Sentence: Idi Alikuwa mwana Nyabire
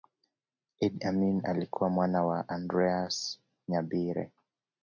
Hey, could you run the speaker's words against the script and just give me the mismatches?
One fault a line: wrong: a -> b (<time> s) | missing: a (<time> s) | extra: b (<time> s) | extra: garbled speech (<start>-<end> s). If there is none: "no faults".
extra: Amin (1.1 s)
extra: wa Andreas (2.2 s)